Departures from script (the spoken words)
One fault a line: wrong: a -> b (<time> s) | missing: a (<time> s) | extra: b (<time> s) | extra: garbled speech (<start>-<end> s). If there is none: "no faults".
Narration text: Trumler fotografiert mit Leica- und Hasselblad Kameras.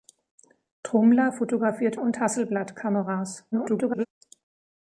missing: mit Leica (2.0 s)
extra: garbled speech (3.5-4.1 s)